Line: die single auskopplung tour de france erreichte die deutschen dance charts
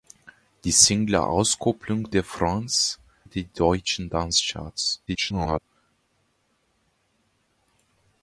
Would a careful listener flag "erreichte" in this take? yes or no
yes